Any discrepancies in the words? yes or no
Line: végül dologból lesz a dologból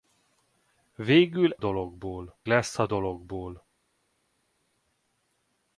no